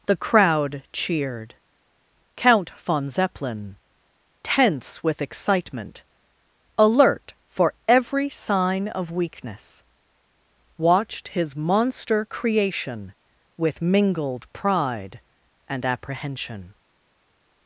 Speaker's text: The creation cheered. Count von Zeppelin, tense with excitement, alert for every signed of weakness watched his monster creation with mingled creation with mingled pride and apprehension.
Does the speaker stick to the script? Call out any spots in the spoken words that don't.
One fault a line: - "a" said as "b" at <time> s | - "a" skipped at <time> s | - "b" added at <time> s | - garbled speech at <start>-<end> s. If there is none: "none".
- "creation" said as "crowd" at 0.1 s
- "signed" said as "sign" at 8.3 s
- "creation with mingled" skipped at 14.5 s